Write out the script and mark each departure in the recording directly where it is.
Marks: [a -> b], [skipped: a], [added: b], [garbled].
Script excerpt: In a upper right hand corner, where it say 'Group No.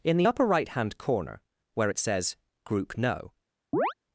In [a -> the] upper right hand corner, where it [say -> says] 'Group No.